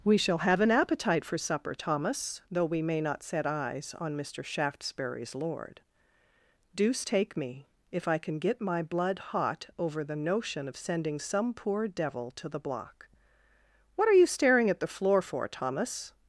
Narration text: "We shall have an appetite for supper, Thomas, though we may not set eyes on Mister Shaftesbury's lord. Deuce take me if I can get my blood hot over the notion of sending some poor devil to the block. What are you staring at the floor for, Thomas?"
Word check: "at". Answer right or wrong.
right